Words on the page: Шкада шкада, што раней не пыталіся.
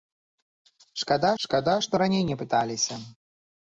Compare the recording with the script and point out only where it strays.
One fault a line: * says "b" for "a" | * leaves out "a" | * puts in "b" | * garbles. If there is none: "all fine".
all fine